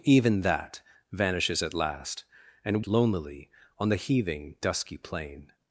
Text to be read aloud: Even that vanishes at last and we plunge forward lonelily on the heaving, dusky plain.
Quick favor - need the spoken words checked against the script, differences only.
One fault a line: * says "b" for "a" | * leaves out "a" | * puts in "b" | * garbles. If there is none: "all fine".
* leaves out "we plunge forward"